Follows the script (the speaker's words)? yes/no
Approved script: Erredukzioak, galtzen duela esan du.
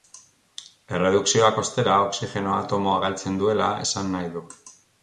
no